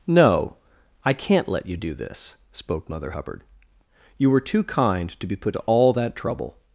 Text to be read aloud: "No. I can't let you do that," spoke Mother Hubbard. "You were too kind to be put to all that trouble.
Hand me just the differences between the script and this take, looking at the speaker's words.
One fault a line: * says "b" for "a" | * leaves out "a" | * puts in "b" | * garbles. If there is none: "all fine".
* says "this" for "that"